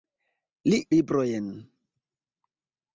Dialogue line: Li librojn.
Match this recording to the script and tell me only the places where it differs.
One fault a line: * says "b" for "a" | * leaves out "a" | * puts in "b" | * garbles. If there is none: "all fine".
all fine